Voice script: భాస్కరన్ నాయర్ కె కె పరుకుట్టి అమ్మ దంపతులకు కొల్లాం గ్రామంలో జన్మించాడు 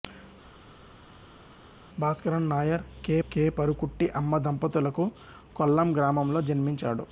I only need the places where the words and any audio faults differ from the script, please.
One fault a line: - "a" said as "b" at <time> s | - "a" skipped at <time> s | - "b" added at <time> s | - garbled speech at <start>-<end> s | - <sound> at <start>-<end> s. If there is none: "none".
none